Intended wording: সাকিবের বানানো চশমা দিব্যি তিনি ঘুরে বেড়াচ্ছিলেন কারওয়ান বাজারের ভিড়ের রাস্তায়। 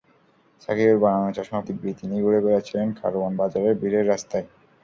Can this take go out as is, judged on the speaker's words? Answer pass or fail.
pass